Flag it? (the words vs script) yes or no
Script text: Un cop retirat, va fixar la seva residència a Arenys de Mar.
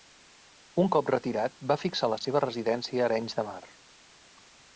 no